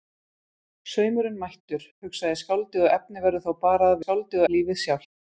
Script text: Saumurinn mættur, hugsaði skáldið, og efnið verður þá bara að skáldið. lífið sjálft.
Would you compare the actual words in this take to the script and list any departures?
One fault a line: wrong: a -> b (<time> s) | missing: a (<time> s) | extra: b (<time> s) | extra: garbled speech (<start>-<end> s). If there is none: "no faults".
no faults